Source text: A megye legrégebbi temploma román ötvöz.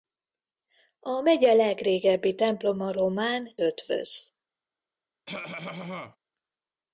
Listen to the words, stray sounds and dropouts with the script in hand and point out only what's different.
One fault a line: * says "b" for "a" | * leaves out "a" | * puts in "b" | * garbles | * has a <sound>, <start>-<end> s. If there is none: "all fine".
* has a cough, 5.3-6.2 s